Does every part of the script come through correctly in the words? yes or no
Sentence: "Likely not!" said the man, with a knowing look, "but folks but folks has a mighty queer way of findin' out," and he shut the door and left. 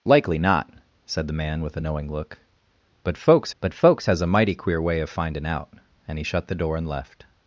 yes